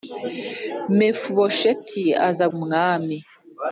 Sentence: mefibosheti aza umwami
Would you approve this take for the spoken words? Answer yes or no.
yes